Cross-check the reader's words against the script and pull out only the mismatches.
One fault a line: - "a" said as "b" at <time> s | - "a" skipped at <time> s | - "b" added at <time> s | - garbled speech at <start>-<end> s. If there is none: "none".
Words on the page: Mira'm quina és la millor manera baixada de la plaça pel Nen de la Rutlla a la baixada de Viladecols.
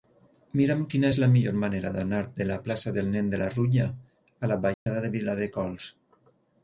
- "baixada" said as "d'anar" at 2.0 s
- "pel" said as "del" at 3.0 s